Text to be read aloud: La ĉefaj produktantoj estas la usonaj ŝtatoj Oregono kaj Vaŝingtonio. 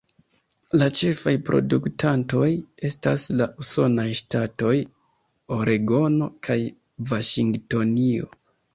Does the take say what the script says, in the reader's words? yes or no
yes